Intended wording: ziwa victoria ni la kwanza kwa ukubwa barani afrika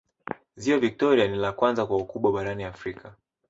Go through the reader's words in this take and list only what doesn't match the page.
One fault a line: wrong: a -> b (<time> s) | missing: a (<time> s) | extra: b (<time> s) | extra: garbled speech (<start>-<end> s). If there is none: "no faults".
no faults